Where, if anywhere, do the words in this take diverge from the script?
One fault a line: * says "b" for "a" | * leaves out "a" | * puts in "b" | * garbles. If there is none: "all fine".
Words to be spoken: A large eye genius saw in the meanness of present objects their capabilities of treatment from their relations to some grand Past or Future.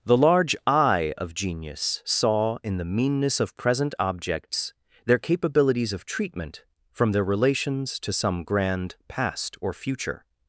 * says "The" for "A"
* puts in "of"